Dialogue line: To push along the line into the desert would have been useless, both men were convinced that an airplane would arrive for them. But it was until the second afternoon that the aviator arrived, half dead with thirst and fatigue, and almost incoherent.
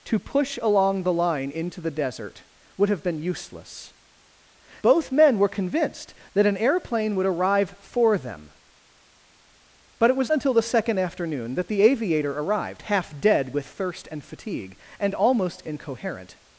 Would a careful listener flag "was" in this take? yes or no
no